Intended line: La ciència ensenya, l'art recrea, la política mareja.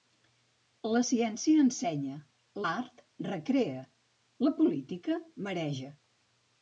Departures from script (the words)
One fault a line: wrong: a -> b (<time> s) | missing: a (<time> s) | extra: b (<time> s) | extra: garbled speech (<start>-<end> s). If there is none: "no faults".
no faults